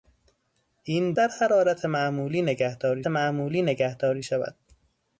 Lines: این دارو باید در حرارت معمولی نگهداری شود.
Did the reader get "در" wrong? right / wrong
wrong